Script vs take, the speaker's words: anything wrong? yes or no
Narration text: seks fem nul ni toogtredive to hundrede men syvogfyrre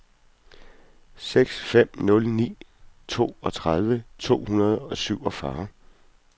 yes